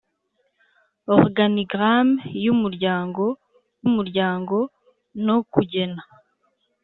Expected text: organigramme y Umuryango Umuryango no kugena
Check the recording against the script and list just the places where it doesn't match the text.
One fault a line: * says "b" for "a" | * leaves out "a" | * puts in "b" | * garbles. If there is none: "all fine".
all fine